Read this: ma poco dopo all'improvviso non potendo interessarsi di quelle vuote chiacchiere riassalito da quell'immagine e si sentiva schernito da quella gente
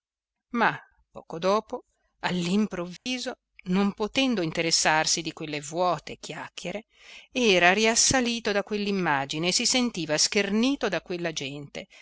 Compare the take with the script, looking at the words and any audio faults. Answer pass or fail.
fail